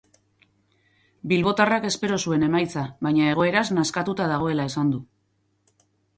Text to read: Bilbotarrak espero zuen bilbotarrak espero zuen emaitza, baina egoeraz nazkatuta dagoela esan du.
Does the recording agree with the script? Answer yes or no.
no